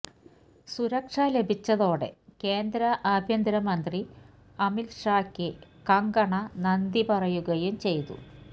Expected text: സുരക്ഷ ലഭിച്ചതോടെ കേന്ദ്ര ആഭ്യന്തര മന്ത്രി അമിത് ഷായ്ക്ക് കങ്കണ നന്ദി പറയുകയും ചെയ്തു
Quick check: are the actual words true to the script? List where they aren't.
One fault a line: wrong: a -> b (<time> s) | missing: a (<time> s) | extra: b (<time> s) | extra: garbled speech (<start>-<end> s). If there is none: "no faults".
no faults